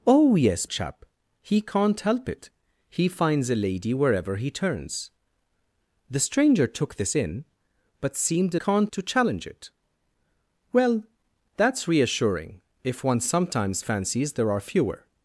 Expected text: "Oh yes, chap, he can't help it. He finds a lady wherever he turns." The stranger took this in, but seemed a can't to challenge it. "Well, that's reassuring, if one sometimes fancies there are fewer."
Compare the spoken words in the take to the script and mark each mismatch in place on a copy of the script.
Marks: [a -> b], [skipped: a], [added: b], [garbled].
"Oh yes, chap, he can't help it. He finds a lady wherever he turns." The stranger took this in, but seemed a can't to challenge it. "Well, that's reassuring, if one sometimes fancies there are fewer."